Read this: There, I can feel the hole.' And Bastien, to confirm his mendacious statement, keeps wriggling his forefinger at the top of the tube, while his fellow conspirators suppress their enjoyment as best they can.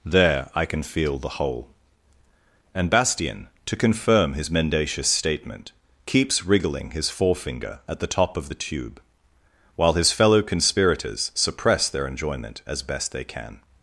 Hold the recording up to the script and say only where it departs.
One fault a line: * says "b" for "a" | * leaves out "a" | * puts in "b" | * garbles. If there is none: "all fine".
all fine